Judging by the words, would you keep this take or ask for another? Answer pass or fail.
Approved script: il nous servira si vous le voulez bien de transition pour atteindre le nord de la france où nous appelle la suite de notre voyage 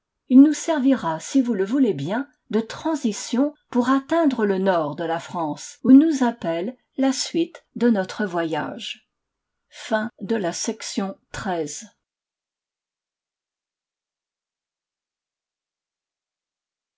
pass